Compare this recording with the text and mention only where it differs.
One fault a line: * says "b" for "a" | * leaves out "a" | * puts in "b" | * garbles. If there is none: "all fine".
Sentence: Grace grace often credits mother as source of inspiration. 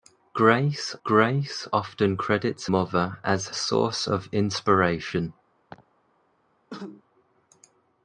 all fine